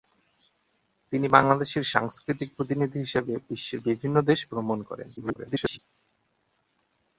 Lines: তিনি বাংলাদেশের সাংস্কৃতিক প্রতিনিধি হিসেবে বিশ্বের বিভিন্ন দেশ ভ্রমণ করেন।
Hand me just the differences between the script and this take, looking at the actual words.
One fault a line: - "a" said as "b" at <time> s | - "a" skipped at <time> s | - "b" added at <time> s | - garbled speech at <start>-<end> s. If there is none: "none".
- garbled speech at 5.2-5.8 s